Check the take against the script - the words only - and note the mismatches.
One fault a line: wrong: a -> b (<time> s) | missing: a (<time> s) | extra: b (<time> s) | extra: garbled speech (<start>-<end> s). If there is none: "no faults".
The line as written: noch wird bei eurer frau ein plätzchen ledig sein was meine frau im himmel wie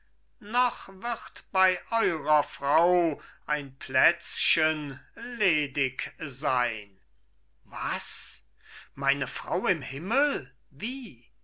no faults